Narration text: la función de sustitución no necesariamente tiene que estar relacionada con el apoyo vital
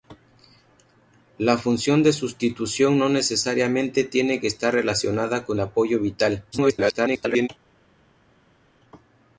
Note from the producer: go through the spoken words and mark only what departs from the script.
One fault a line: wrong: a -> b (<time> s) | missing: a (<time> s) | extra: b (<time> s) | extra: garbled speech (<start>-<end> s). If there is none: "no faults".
missing: el (5.6 s)
extra: garbled speech (6.5-7.5 s)